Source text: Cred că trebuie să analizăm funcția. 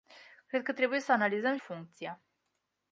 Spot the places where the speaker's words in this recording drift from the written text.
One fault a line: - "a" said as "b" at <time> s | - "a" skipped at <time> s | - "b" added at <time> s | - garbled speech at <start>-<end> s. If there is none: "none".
none